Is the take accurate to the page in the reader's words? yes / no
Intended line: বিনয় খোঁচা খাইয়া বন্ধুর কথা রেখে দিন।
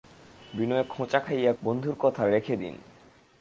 yes